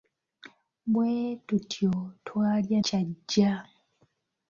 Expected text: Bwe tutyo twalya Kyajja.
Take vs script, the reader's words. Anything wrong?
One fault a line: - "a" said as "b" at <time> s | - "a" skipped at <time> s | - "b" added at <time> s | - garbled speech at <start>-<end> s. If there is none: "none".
none